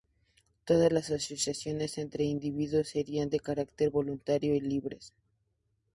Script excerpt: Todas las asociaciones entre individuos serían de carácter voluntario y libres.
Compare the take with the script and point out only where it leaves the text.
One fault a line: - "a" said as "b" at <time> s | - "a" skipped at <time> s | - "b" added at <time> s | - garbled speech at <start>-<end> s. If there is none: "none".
none